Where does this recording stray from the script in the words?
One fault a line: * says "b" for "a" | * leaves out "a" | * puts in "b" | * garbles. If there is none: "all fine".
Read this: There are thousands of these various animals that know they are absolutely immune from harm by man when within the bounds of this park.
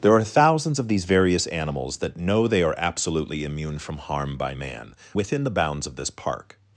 * leaves out "when"